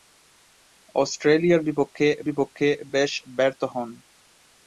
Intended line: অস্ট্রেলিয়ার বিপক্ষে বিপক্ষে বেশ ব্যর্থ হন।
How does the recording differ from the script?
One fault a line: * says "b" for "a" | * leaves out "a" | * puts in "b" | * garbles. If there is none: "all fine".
all fine